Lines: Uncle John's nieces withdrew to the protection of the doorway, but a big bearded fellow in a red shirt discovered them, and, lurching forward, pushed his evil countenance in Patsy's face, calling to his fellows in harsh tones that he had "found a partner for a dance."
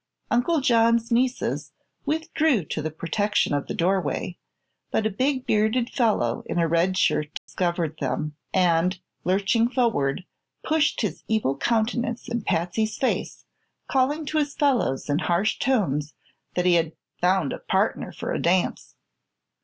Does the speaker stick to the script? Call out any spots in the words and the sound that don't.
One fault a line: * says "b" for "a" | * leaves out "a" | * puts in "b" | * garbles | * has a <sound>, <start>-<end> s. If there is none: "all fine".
* has a dropout, 7.4-7.5 s